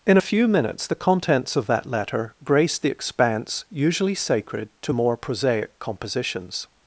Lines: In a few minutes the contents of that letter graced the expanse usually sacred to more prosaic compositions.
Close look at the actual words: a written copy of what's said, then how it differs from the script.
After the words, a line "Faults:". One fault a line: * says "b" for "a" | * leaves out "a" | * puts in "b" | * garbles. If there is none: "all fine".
In a few minutes the contents of that letter graced the expanse usually sacred to more prosaic compositions.
Faults:
all fine